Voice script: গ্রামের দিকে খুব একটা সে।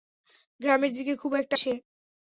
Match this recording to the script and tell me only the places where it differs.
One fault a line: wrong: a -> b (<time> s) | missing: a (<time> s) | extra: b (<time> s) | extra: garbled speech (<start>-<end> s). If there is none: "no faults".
no faults